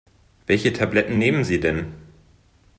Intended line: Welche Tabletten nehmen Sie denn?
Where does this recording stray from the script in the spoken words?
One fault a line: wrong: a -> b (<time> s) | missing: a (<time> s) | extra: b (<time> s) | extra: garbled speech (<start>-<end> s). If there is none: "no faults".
no faults